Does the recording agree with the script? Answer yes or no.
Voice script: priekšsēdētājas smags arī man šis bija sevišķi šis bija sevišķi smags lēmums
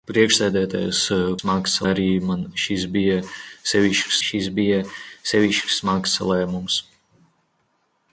yes